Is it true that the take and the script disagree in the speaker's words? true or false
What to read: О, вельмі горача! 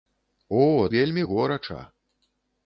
false